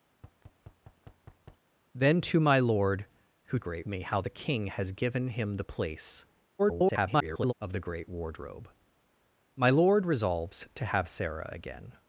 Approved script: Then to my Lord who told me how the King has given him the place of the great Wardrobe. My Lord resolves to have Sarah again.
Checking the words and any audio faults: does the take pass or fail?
fail